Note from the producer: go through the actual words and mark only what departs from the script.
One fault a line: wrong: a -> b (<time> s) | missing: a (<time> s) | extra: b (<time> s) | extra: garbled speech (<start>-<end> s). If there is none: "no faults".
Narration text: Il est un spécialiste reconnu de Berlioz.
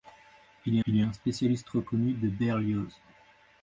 extra: il (0.9 s)